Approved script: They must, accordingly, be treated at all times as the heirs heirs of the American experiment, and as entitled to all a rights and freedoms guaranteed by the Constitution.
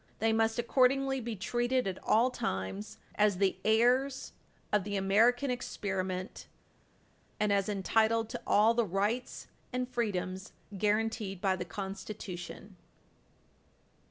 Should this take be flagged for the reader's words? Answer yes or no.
yes